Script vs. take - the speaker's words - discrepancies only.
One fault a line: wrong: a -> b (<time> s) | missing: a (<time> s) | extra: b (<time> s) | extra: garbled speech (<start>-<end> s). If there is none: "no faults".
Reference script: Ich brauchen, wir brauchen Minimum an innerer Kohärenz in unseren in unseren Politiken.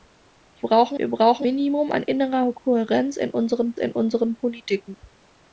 no faults